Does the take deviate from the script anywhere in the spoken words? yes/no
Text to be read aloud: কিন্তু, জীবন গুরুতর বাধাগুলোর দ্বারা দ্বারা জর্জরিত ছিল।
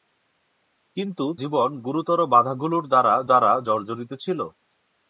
no